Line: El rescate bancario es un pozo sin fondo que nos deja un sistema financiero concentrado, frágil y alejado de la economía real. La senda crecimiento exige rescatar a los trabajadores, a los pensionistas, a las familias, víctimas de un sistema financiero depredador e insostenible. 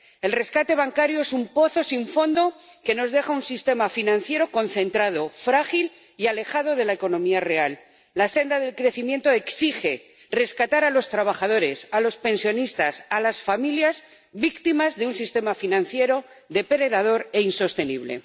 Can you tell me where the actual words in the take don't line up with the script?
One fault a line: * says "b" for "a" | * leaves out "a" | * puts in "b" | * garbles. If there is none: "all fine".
* puts in "del"